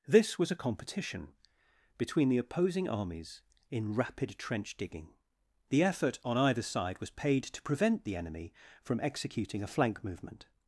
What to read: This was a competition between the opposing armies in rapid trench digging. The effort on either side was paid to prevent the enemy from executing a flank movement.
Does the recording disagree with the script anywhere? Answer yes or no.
no